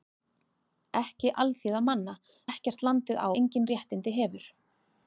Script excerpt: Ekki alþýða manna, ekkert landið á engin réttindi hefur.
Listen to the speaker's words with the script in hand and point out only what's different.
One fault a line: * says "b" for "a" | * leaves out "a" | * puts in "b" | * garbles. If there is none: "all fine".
all fine